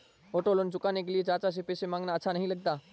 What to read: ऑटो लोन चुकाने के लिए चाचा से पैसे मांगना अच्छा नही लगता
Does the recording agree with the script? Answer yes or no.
yes